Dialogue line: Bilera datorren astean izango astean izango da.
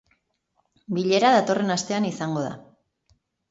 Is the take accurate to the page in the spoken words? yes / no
no